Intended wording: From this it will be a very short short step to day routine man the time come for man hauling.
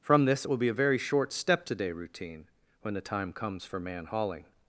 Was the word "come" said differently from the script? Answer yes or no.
yes